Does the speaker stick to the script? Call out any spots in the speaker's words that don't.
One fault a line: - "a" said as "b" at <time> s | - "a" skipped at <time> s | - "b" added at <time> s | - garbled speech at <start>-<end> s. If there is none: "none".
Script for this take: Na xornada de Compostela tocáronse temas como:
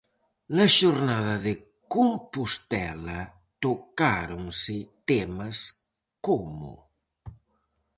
none